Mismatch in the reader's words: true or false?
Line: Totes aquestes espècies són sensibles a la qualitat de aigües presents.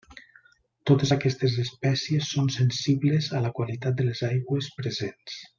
true